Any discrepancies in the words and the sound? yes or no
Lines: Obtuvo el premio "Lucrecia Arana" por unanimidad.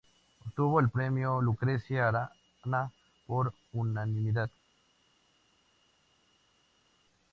no